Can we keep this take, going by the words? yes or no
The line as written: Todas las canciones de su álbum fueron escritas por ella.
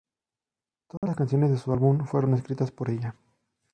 yes